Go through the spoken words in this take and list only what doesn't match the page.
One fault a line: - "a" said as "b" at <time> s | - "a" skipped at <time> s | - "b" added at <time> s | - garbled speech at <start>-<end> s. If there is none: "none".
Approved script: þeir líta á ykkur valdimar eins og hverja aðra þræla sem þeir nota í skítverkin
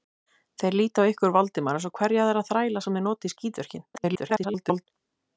- garbled speech at 3.9-4.9 s